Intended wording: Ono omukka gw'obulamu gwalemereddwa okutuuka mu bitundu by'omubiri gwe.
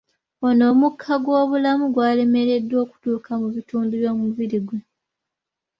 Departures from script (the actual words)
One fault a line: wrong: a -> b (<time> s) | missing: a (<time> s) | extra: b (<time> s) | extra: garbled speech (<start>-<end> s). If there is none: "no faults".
no faults